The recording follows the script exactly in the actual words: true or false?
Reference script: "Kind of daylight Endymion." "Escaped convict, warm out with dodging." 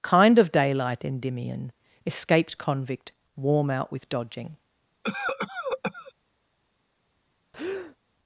true